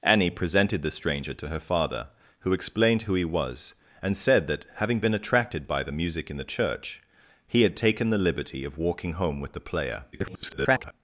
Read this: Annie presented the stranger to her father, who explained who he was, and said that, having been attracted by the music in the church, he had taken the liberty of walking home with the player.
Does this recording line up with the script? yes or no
no